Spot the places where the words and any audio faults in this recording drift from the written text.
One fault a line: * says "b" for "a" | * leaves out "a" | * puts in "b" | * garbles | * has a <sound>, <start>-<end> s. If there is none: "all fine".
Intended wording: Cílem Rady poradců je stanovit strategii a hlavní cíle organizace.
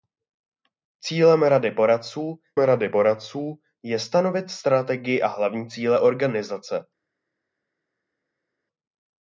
* puts in "Rady poradců"